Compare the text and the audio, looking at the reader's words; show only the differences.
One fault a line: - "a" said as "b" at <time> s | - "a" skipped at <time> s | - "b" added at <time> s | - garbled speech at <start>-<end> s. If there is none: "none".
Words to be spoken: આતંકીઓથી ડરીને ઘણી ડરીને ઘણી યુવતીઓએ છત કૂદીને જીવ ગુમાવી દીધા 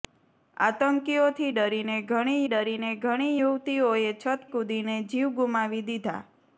none